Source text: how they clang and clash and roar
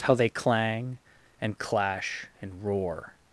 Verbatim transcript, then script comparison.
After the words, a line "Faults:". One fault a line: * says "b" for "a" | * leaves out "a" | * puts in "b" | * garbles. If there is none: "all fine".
how they clang and clash and roar
Faults:
all fine